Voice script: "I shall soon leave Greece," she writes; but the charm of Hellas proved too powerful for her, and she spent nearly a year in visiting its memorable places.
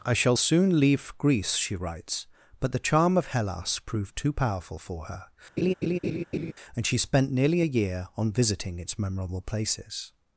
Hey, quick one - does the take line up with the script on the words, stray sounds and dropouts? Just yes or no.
no